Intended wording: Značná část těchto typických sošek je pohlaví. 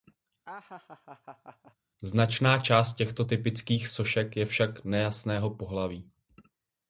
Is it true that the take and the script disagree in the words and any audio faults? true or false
true